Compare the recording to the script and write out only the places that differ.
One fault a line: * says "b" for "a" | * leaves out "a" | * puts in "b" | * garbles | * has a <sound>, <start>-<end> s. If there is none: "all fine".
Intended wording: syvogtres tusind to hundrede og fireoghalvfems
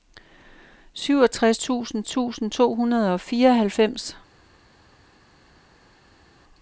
* puts in "tusind"